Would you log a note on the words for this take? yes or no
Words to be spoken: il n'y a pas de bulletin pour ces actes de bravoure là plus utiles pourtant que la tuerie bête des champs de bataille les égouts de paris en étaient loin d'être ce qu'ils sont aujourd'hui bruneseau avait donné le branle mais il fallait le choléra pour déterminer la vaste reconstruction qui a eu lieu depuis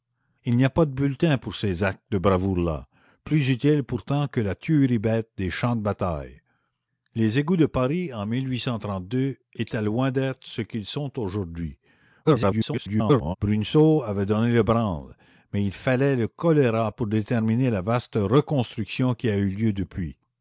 yes